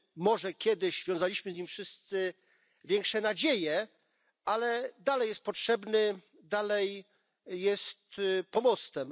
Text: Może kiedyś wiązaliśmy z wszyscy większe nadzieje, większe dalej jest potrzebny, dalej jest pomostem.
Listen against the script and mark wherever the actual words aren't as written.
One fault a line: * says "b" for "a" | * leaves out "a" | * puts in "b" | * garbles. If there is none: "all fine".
* puts in "nim"
* says "ale" for "większe"